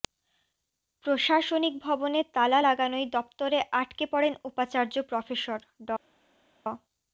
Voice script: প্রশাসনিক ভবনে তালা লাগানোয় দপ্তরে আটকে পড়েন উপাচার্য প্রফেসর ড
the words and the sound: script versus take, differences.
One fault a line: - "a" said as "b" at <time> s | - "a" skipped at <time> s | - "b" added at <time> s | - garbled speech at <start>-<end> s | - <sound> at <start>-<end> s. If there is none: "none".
none